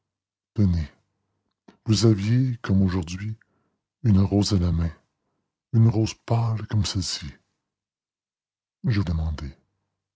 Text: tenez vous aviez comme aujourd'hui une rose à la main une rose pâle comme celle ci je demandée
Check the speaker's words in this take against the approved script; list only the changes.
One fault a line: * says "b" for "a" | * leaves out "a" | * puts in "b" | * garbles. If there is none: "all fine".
all fine